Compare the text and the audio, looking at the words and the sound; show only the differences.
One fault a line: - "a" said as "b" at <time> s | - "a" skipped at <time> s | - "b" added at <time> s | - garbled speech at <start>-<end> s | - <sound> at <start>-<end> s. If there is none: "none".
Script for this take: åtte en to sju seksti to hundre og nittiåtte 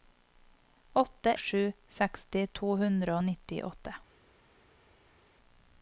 - "en to" skipped at 1.3 s